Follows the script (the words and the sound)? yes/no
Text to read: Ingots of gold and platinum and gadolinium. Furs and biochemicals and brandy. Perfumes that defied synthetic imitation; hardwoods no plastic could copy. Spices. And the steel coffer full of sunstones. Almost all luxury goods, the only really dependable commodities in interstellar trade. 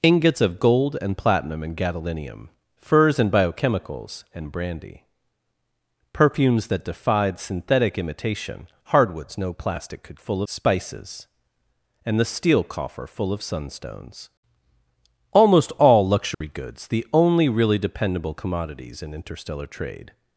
no